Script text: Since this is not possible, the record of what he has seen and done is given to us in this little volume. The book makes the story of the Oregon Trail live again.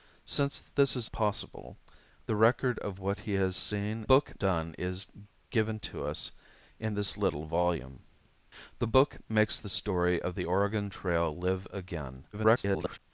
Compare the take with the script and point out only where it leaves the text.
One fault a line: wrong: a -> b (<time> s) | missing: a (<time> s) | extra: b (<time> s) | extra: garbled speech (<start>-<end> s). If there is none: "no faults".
missing: not (1.1 s)
wrong: and -> book (4.0 s)
extra: garbled speech (12.3-13.0 s)